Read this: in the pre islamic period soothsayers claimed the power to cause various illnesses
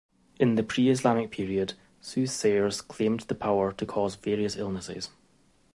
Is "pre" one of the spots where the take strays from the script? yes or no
no